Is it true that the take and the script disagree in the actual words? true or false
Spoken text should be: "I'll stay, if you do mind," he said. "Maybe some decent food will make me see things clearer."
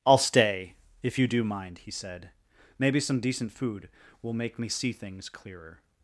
false